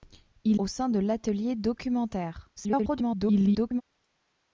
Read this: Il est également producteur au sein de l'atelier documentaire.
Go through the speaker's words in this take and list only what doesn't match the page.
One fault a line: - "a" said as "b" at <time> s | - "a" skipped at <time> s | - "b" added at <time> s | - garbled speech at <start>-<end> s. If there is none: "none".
- "est également producteur" skipped at 0.6 s
- garbled speech at 2.6-3.8 s